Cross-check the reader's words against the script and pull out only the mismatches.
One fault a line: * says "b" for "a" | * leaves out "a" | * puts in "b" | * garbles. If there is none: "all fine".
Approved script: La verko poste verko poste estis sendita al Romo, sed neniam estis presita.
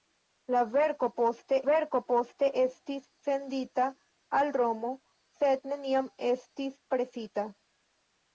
all fine